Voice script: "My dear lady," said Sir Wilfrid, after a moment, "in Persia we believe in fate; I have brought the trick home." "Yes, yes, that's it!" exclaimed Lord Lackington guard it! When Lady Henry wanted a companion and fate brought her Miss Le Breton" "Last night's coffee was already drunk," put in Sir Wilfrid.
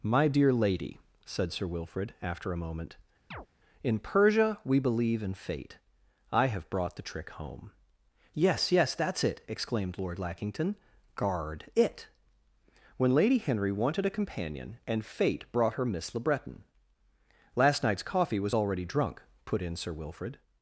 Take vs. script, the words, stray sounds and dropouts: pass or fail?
fail